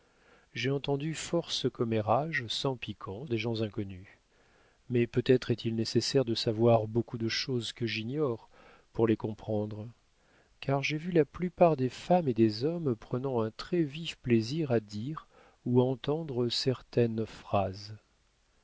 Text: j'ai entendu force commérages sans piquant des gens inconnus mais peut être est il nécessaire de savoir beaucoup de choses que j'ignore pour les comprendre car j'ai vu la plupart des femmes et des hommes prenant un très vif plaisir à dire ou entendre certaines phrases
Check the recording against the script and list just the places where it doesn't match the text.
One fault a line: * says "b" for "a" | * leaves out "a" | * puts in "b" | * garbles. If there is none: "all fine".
all fine